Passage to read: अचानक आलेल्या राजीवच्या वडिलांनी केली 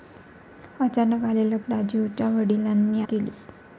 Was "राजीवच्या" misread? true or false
false